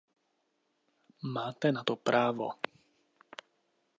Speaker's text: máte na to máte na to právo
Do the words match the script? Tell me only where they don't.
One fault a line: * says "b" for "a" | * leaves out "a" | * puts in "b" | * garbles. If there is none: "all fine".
* leaves out "máte na to"